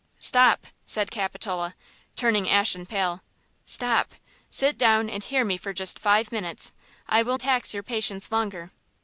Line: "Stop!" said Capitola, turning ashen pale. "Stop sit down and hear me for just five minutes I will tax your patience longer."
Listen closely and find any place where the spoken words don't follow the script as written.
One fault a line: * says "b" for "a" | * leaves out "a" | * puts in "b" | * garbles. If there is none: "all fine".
all fine